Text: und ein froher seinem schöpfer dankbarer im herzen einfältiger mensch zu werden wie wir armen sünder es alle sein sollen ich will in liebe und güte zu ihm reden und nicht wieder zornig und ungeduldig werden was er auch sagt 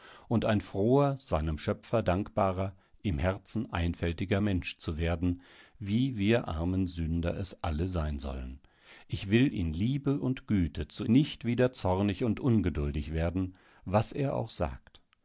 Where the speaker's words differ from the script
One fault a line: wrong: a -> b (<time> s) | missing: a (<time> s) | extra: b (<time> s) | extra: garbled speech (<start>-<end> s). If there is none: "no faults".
missing: ihm reden und (11.0 s)